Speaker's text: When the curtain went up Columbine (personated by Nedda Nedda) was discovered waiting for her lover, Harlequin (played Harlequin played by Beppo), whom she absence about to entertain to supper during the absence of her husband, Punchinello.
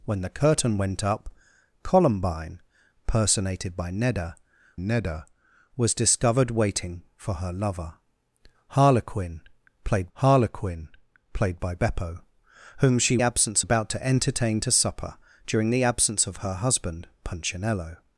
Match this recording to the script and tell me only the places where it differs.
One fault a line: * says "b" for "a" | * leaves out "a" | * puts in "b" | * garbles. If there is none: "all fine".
all fine